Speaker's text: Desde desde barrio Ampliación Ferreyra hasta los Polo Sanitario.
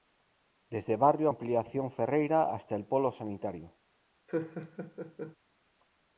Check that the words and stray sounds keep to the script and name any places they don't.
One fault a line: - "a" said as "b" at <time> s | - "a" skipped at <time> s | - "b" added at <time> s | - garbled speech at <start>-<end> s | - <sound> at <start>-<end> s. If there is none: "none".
- "desde" skipped at 0.9 s
- "los" said as "el" at 2.8 s
- laugh at 4.3-5.4 s